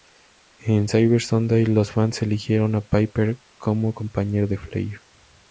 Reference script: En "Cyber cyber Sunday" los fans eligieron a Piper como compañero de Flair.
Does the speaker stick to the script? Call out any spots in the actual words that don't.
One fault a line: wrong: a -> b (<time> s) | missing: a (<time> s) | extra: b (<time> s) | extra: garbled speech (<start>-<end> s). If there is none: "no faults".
missing: cyber (1.2 s)